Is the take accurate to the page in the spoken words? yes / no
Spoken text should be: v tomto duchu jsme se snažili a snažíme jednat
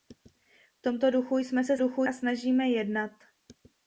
no